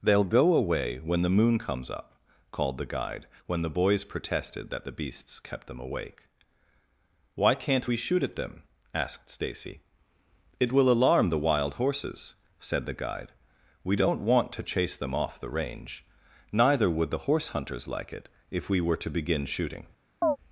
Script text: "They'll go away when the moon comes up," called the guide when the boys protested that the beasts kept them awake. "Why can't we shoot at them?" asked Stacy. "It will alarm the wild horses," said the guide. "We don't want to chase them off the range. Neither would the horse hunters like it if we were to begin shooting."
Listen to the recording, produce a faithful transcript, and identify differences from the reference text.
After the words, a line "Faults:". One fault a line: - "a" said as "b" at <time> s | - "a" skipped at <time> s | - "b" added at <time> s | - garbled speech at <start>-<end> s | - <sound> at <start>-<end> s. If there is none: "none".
"They'll go away when the moon comes up," called the guide when the boys protested that the beasts kept them awake. "Why can't we shoot at them?" asked Stacy. "It will alarm the wild horses," said the guide. "We don't want to chase them off the range. Neither would the horse hunters like it if we were to begin shooting."
Faults:
- chirp at 20.2-20.4 s